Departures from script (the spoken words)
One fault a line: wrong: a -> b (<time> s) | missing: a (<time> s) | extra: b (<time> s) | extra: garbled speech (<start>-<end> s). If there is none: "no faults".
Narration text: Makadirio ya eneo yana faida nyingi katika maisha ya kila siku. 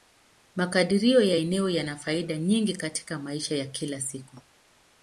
no faults